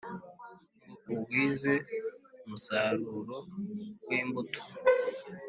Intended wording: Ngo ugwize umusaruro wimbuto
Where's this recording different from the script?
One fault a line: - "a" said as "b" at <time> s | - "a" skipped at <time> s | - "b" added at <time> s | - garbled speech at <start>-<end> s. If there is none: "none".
none